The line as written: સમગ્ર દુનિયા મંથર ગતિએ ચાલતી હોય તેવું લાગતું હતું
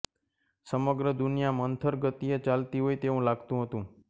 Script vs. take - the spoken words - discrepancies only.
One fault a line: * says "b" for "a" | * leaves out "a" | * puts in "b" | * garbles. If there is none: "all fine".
all fine